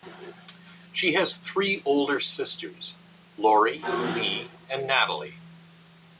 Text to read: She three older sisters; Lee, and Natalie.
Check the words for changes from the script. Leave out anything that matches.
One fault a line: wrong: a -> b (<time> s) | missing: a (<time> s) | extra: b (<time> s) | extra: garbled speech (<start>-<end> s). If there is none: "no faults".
extra: has (1.1 s)
extra: Lori (3.3 s)